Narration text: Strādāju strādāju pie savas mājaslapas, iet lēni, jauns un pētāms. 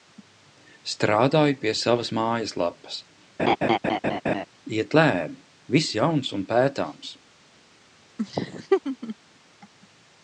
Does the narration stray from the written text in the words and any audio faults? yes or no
yes